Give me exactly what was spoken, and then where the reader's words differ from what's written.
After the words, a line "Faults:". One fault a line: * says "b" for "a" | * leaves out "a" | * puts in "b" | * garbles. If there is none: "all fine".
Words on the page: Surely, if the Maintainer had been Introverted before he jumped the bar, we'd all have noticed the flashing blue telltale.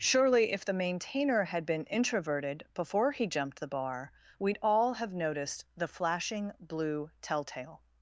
Surely, if the Maintainer had been Introverted before he jumped the bar, we'd all have noticed the flashing blue telltale.
Faults:
all fine